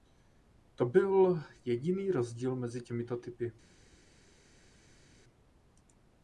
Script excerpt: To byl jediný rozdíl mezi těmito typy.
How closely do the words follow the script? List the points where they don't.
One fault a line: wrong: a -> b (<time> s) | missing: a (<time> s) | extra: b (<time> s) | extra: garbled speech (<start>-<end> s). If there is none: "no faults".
no faults